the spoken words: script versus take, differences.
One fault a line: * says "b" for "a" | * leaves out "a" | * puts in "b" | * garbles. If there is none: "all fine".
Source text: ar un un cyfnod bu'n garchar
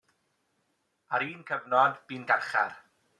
* leaves out "un"